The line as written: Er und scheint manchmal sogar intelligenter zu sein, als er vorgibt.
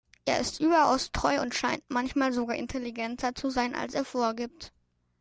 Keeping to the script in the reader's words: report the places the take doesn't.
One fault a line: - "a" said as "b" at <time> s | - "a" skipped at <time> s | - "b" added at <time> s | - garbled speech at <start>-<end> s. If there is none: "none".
- "ist überaus treu" added at 0.4 s